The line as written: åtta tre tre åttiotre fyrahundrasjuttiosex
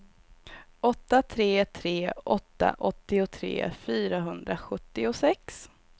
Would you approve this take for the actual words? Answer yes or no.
no